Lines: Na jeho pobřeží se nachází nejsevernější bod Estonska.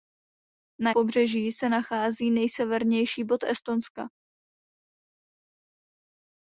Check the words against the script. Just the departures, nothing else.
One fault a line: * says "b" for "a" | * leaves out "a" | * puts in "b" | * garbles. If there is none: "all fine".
* leaves out "jeho"